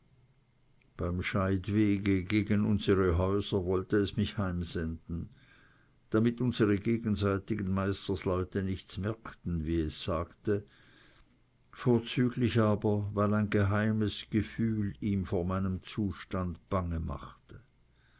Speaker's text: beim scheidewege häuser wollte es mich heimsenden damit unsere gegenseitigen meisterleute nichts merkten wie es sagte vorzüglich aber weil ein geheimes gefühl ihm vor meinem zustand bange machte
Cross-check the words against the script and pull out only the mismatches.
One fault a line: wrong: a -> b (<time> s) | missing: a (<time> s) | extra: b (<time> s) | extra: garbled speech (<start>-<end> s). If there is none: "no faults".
extra: gegen unsere (2.2 s)